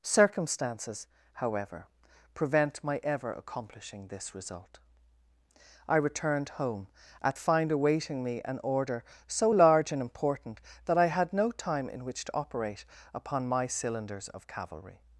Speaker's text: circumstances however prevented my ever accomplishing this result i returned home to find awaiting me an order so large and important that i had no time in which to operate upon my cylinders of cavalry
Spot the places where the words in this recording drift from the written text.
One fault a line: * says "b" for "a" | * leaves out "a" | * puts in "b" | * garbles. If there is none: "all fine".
* says "prevent" for "prevented"
* says "at" for "to"